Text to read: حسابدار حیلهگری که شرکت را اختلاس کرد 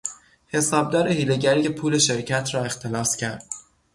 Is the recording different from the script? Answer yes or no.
yes